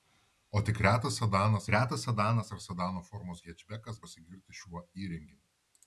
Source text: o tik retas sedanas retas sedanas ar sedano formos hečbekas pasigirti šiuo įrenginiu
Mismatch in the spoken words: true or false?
false